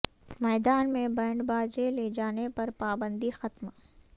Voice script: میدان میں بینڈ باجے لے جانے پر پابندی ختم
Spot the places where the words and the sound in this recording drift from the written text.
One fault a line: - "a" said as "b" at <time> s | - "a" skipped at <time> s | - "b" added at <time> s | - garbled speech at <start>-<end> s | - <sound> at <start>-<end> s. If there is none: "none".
none